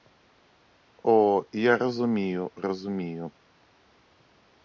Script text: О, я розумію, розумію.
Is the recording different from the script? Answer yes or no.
no